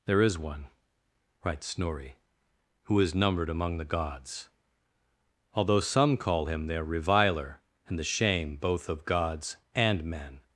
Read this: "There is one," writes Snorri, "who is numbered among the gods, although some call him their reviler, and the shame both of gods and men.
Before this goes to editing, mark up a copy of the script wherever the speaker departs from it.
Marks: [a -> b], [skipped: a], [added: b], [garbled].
"There is one," writes Snorri, "who is numbered among the gods, although some call him their reviler, and the shame both of gods and men.